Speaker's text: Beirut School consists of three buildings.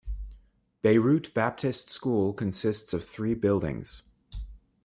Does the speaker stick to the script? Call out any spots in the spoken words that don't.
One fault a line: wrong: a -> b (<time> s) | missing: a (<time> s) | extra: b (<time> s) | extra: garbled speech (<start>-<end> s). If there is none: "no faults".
extra: Baptist (1.4 s)